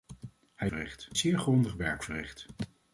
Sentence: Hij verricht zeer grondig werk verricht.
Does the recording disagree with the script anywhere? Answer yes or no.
no